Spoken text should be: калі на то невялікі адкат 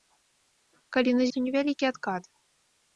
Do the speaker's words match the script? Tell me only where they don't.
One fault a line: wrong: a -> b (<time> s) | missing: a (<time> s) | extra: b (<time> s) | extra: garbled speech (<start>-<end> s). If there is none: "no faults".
no faults